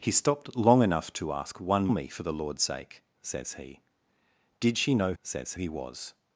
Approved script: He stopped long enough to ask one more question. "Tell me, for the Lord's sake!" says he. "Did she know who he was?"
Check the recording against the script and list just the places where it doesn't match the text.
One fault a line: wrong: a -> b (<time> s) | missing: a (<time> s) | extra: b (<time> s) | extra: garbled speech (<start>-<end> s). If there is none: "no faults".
missing: more question Tell (1.9 s)
wrong: who -> says (5.2 s)